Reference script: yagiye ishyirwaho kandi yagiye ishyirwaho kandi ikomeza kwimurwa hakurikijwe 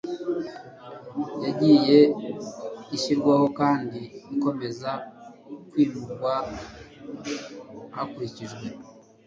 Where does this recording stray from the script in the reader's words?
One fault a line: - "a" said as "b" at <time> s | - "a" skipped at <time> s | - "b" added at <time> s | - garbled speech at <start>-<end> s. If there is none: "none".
- "yagiye ishyirwaho kandi" skipped at 4.0 s